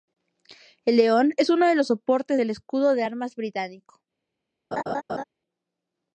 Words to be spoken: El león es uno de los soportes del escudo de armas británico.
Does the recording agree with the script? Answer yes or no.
yes